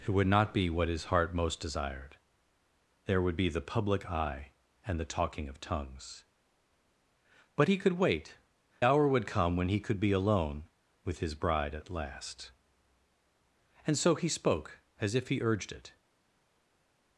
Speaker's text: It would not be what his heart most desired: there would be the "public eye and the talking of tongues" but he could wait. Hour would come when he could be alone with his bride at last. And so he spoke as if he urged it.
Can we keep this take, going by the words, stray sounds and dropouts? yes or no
yes